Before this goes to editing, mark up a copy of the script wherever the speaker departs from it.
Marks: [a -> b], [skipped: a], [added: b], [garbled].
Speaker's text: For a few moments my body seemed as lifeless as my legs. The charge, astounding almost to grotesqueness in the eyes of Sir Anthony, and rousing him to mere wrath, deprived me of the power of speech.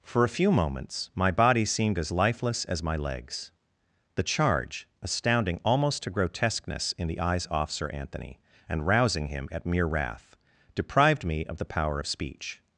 For a few moments my body seemed as lifeless as my legs. The charge, astounding almost to grotesqueness in the eyes [of -> off] Sir Anthony, and rousing him [to -> at] mere wrath, deprived me of the power of speech.